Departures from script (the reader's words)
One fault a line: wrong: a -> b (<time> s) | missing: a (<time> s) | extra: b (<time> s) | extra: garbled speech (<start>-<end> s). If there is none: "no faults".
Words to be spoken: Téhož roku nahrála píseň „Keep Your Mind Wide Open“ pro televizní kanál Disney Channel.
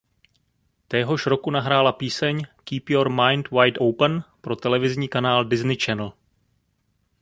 no faults